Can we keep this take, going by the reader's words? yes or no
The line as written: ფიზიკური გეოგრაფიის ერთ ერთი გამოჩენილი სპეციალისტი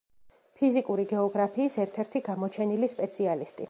yes